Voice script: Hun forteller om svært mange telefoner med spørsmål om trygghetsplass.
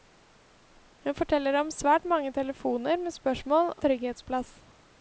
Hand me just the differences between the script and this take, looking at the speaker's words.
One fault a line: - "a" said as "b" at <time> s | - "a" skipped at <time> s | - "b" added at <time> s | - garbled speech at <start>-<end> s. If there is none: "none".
- "om" skipped at 3.7 s